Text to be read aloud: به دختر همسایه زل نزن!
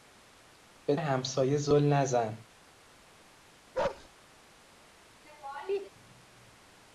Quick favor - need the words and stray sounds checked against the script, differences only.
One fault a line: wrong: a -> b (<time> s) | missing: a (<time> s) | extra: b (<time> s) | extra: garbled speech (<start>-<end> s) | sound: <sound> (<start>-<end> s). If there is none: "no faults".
missing: دختر (0.9 s)
sound: bark (3.7-4.1 s)
sound: laugh (5.2-5.9 s)